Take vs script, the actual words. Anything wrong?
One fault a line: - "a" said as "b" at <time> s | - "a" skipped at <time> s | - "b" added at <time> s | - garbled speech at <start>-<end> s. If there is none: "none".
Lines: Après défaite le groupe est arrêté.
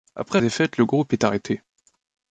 none